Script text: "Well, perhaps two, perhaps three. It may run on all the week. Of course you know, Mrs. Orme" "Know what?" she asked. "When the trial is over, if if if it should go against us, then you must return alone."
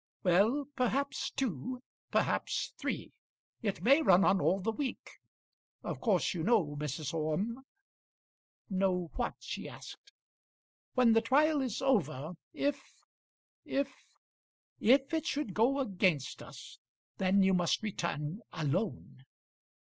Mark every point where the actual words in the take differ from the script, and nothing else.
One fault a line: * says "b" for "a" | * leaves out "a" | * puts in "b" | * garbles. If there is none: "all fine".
all fine